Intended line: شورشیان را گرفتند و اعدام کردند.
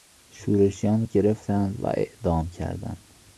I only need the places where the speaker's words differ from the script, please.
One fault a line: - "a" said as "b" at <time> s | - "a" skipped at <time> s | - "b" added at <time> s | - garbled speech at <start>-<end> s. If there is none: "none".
- "را" skipped at 1.1 s